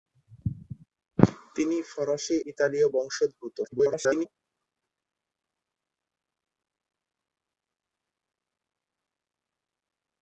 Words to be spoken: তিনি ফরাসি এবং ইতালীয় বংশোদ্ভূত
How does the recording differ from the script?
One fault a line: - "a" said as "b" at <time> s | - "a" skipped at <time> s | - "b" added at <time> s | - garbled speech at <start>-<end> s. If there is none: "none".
- "এবং" skipped at 2.4 s
- garbled speech at 3.6-4.3 s